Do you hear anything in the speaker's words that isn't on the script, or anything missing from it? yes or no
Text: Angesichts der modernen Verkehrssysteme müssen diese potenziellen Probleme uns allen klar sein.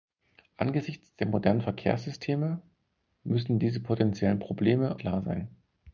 yes